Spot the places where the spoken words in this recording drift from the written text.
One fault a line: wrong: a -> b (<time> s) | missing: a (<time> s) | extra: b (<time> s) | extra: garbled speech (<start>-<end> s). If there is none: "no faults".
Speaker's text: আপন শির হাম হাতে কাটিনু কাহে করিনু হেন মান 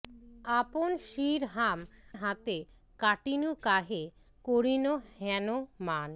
no faults